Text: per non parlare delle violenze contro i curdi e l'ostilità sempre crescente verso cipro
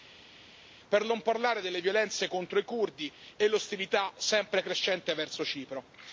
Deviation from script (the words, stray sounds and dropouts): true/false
false